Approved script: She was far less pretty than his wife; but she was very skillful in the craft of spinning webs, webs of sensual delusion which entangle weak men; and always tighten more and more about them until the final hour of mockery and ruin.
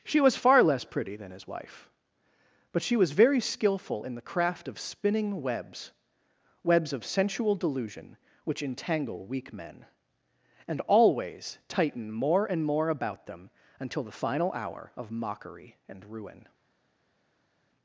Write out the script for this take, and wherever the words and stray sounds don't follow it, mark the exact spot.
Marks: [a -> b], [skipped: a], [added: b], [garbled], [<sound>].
She was far less pretty than his wife; but she was very skillful in the craft of spinning webs, webs of sensual delusion which entangle weak men; and always tighten more and more about them until the final hour of mockery and ruin.